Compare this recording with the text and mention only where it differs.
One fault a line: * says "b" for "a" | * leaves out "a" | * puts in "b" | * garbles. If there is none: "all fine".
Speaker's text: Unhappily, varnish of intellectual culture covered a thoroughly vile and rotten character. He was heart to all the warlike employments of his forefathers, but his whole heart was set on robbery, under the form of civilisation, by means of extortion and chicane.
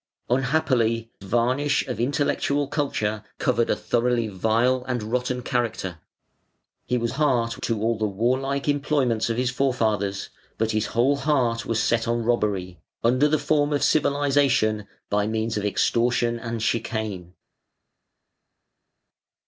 all fine